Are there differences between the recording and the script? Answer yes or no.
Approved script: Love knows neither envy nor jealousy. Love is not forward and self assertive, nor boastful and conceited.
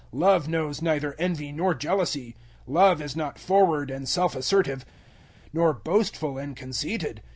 no